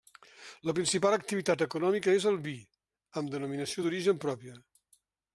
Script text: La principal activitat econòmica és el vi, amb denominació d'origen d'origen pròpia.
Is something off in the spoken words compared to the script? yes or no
yes